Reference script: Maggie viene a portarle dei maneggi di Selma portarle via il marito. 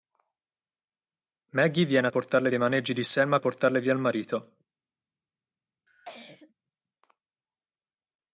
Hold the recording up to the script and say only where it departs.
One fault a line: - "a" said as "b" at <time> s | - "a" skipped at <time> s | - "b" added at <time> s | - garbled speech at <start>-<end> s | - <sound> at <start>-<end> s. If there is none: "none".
- cough at 5.9-6.5 s